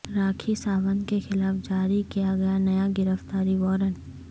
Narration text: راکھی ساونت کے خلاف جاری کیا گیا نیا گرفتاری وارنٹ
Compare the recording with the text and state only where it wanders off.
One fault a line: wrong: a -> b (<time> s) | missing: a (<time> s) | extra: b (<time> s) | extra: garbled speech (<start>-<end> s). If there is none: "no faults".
no faults